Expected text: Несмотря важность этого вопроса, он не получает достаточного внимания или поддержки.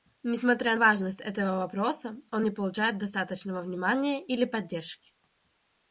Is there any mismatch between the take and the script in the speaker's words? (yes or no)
no